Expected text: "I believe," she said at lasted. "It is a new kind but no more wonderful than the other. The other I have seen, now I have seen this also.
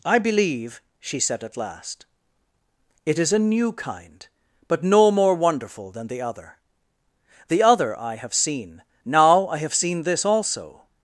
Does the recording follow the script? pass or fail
fail